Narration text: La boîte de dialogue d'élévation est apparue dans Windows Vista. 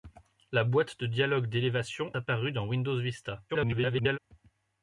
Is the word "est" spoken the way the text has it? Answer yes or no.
no